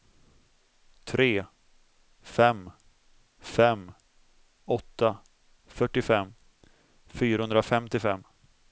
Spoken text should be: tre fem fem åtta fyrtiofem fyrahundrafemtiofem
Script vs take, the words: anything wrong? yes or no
no